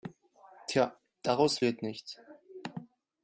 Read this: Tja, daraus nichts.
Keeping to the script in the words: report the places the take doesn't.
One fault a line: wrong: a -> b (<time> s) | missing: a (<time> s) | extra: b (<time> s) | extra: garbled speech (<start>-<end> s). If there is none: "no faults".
extra: wird (1.6 s)